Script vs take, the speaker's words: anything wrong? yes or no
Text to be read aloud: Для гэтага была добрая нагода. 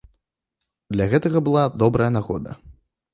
no